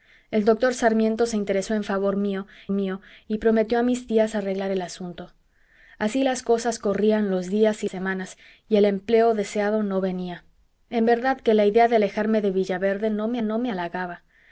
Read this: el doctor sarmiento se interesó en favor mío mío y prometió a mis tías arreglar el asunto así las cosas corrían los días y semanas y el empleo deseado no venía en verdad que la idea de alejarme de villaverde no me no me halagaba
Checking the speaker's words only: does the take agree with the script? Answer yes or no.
yes